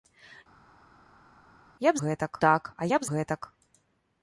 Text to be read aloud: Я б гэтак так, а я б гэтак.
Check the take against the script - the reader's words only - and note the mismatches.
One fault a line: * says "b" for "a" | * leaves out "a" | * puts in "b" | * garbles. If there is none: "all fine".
all fine